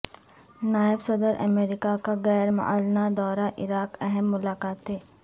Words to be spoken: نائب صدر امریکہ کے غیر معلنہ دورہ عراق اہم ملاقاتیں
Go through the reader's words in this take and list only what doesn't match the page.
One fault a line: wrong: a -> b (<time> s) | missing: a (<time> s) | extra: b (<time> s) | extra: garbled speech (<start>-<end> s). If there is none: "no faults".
wrong: کے -> کا (2.0 s)